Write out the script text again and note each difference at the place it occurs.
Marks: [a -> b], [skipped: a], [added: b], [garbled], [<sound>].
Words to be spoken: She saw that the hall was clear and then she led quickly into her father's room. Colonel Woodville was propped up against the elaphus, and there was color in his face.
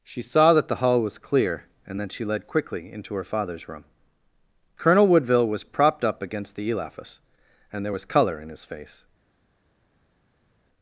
She saw that the hall was clear and then she led quickly into her father's room. Colonel Woodville was propped up against the elaphus, and there was color in his face.